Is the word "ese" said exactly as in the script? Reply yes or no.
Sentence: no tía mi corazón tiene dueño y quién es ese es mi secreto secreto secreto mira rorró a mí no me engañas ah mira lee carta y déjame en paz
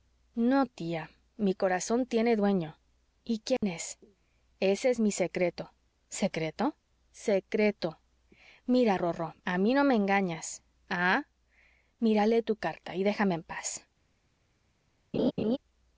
yes